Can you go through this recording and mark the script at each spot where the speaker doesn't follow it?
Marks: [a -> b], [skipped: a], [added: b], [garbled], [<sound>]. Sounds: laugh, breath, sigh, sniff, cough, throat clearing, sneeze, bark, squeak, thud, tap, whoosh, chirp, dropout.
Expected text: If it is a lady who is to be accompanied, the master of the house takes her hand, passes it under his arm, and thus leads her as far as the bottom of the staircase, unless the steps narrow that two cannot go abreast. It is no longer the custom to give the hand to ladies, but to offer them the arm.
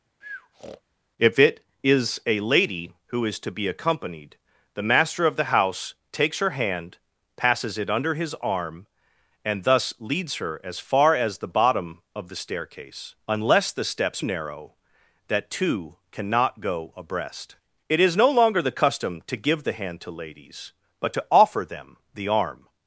[breath] If it is a lady who is to be accompanied, the master of the house takes her hand, passes it under his arm, and thus leads her as far as the bottom of the staircase, unless the steps narrow that two cannot go abreast. It is no longer the custom to give the hand to ladies, but to offer them the arm.